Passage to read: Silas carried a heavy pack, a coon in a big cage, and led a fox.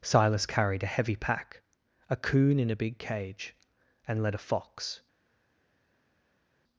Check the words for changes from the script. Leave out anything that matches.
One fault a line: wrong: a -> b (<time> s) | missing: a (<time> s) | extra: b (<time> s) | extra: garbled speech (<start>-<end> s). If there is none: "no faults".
no faults